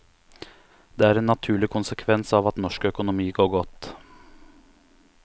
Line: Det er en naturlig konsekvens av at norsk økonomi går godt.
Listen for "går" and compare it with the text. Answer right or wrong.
right